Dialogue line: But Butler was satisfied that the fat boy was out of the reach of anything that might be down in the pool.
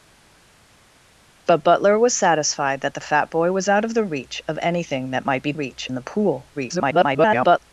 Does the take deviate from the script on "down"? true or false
true